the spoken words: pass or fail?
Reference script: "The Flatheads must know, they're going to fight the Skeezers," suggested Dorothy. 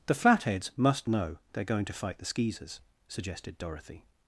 pass